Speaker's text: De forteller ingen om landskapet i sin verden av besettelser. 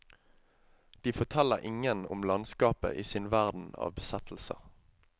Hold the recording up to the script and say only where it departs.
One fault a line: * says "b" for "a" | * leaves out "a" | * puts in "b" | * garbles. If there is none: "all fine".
all fine